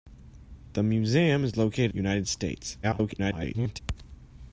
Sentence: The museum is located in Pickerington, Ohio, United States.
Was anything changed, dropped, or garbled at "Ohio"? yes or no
yes